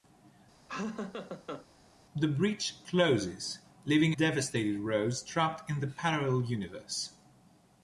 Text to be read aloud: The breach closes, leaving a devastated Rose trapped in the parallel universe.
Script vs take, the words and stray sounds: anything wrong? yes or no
yes